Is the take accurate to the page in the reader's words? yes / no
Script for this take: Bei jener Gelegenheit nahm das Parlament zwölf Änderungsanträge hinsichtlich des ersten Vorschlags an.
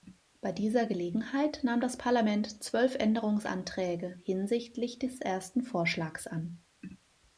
no